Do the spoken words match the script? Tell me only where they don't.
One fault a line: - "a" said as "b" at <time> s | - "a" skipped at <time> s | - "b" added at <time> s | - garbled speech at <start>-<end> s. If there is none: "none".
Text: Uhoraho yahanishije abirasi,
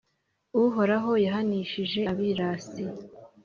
none